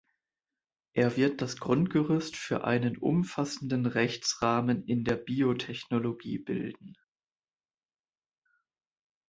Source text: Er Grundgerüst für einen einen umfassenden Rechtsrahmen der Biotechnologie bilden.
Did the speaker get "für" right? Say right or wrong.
right